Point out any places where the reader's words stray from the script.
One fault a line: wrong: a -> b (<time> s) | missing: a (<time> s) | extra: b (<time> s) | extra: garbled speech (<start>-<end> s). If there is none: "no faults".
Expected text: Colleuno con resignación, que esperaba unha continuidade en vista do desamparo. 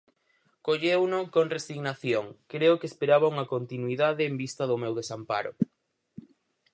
extra: creo (2.5 s)
extra: meu (4.8 s)